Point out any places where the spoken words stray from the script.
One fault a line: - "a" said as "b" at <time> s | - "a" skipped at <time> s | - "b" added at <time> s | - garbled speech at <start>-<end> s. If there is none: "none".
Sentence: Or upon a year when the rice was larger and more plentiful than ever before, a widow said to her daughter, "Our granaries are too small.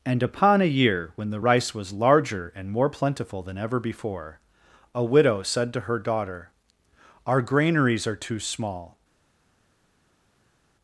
- "Or" said as "And" at 0.1 s